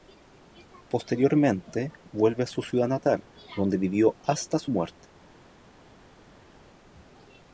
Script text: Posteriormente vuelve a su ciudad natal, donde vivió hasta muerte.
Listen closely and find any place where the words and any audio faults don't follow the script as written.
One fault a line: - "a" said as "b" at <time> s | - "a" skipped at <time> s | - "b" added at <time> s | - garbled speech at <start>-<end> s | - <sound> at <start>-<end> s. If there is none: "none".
- "su" added at 4.6 s